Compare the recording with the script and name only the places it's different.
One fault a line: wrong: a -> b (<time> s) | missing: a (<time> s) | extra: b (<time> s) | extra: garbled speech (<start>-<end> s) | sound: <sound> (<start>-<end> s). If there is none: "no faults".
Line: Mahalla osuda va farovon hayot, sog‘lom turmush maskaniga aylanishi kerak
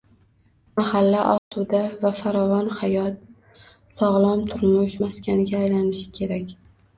sound: dropout (1.4-1.5 s)